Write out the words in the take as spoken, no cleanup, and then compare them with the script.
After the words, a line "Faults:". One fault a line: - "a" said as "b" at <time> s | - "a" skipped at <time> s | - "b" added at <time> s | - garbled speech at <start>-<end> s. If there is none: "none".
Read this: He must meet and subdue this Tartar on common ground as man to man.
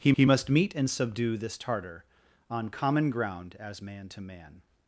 He he must meet and subdue this Tartar on common ground as man to man.
Faults:
- "he" added at 0.1 s